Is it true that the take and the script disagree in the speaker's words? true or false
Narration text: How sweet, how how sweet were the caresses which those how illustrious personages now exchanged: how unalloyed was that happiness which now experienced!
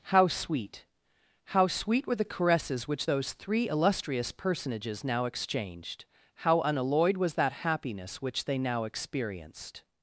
true